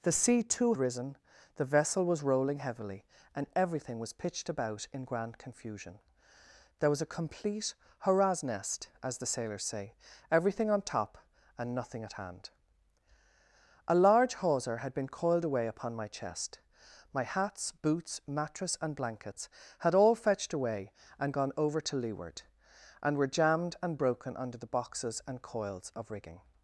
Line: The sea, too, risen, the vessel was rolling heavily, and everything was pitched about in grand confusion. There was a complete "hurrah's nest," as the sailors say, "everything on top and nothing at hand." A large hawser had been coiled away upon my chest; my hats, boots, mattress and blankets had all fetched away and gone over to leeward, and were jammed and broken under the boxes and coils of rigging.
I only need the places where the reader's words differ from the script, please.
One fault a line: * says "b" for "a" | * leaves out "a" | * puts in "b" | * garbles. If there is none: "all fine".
all fine